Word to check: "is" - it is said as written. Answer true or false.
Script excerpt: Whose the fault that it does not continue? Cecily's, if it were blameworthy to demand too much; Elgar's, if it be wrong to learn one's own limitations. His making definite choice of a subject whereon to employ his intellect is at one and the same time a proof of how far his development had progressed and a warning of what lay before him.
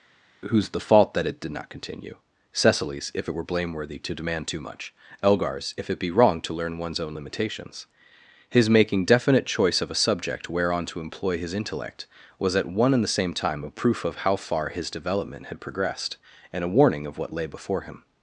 false